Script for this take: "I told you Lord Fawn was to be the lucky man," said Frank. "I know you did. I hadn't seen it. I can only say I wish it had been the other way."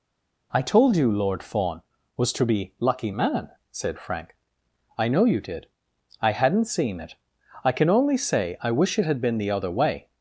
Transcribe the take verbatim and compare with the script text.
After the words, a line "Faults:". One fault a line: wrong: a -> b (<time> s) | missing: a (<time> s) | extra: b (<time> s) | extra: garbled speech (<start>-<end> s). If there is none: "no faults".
"I told you Lord Fawn was to be lucky man," said Frank. "I know you did. I hadn't seen it. I can only say I wish it had been the other way."
Faults:
missing: the (2.7 s)